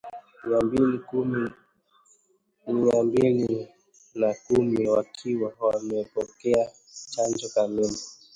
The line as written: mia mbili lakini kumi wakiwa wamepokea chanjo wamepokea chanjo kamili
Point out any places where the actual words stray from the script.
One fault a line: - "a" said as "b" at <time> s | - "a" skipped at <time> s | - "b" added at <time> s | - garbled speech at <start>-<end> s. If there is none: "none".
- "lakini" said as "na" at 4.1 s
- "wamepokea chanjo" skipped at 7.5 s